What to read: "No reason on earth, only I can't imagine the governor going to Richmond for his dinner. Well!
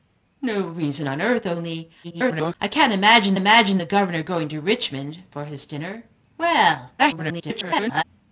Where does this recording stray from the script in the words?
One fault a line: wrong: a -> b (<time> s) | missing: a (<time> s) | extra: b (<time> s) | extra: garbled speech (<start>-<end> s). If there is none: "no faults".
extra: garbled speech (2.0-2.6 s)
extra: imagine (3.3 s)
extra: garbled speech (7.0-8.0 s)